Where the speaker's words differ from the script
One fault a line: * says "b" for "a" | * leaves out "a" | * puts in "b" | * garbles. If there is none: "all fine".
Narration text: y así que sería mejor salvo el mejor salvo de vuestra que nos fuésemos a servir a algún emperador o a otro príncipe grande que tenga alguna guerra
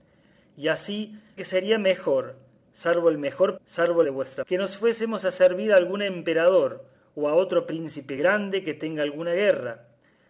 all fine